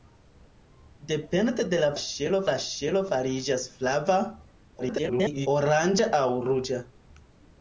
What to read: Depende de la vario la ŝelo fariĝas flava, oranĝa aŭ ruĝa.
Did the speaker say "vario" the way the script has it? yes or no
no